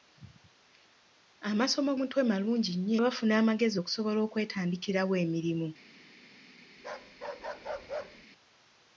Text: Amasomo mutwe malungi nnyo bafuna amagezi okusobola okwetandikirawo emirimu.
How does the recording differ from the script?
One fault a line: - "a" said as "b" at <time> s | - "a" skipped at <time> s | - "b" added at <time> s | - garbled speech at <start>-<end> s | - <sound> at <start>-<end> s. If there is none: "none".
- bark at 6.8-8.3 s